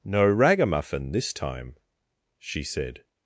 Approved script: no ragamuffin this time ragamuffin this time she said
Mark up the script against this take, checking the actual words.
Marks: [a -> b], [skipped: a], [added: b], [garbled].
no ragamuffin this time [skipped: ragamuffin this time] she said